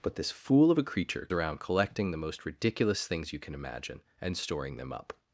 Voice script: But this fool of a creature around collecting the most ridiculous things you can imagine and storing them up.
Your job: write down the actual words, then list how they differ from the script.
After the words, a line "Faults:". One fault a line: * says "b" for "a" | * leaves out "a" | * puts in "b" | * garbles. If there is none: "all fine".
But this fool of a creature around collecting the most ridiculous things you can imagine and storing them up.
Faults:
all fine